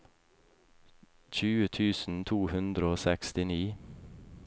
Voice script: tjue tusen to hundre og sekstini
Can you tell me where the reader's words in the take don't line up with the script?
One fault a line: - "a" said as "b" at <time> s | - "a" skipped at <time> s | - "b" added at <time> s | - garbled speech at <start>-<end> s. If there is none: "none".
none